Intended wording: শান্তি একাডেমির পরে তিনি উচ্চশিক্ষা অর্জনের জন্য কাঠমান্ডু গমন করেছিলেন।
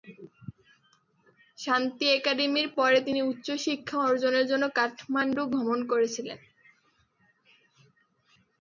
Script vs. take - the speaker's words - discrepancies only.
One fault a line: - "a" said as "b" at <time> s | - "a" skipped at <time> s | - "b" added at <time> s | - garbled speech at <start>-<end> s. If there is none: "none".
none